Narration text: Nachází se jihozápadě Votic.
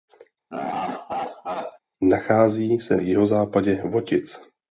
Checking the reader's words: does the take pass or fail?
pass